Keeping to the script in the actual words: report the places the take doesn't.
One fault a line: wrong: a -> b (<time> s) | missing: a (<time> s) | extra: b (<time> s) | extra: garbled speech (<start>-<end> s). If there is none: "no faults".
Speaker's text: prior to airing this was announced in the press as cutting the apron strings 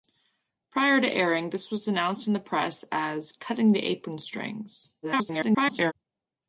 extra: garbled speech (5.0-5.9 s)